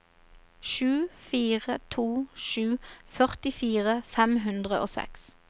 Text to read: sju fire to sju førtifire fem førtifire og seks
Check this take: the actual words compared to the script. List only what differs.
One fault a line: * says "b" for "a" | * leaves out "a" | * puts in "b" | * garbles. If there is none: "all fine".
* says "hundre" for "førtifire"